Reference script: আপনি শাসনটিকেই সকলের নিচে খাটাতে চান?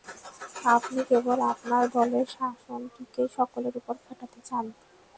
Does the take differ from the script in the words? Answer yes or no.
yes